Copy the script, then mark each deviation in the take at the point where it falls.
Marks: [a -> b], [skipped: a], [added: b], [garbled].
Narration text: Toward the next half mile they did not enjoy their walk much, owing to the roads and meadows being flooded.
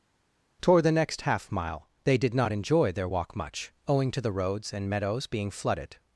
Toward the next half mile they did not enjoy their walk much, owing to the roads and meadows being flooded.